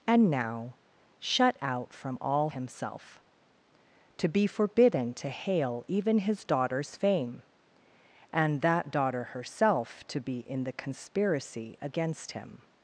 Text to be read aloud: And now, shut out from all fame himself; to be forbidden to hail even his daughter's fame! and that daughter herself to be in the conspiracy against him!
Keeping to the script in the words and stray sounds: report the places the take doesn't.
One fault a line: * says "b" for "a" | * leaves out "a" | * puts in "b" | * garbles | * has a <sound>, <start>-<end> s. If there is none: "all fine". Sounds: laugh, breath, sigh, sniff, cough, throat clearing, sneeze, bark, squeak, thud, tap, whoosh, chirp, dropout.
* leaves out "fame"